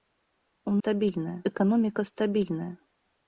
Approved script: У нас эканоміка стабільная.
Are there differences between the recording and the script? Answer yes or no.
yes